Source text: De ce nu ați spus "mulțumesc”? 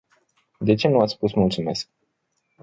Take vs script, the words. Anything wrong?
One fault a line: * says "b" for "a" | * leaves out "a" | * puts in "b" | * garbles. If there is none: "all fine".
all fine